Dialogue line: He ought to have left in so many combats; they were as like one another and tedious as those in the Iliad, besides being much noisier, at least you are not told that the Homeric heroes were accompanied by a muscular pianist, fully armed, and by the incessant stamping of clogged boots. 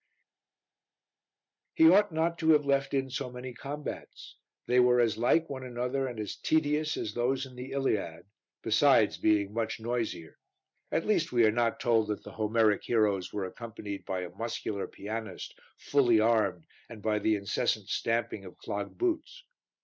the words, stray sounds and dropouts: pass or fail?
fail